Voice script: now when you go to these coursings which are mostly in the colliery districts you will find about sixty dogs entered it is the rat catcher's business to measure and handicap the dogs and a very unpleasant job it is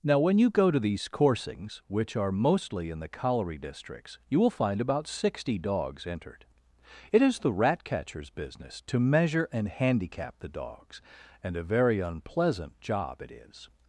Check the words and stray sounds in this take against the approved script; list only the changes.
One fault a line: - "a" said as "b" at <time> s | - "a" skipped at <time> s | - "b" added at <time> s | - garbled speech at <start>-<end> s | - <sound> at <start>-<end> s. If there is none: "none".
none